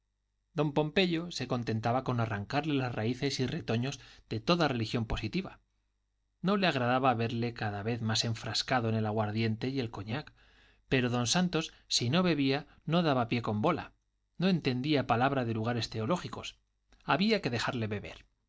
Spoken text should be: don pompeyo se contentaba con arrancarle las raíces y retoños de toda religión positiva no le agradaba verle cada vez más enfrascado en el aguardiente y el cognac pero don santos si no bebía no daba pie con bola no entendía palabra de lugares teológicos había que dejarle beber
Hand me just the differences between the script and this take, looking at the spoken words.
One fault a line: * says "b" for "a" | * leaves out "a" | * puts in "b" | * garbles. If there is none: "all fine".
all fine